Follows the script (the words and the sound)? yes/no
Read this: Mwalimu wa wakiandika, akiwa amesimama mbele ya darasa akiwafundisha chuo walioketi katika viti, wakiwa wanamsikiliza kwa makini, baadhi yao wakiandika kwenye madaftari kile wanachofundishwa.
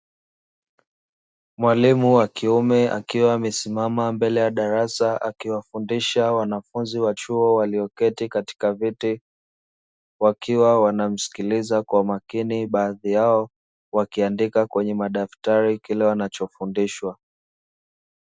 no